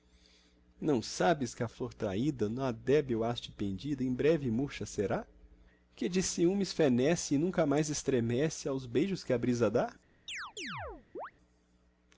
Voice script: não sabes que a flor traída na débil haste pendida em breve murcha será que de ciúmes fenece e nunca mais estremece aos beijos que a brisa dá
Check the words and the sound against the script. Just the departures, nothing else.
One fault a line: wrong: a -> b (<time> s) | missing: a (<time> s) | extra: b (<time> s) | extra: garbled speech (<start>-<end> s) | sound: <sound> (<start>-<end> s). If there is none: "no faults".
sound: chirp (10.3-11.3 s)